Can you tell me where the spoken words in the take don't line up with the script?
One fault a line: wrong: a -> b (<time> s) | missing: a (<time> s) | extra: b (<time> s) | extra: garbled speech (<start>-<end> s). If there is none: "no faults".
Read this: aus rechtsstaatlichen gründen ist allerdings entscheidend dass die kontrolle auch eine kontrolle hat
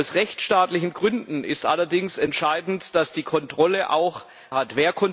missing: eine kontrolle (4.2 s)